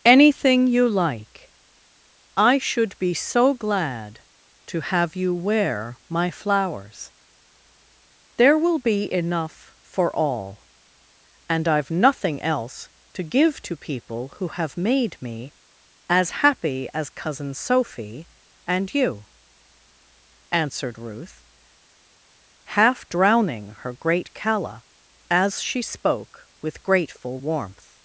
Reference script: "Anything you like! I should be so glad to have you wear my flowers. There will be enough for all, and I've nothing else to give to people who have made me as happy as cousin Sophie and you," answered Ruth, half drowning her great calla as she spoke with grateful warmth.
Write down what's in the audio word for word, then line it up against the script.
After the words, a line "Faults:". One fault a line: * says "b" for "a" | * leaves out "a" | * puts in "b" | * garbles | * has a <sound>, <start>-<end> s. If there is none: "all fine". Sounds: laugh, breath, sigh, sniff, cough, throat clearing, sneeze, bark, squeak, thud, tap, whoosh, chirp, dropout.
"Anything you like! I should be so glad to have you wear my flowers. There will be enough for all, and I've nothing else to give to people who have made me as happy as cousin Sophie and you," answered Ruth, half drowning her great calla as she spoke with grateful warmth.
Faults:
all fine